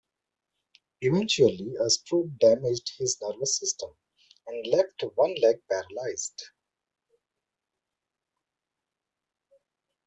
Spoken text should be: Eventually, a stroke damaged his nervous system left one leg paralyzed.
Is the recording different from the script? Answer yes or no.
yes